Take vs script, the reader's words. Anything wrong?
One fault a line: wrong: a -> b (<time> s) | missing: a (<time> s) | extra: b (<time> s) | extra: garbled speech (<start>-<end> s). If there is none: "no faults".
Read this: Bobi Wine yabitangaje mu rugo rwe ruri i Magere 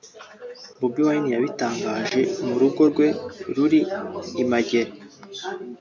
no faults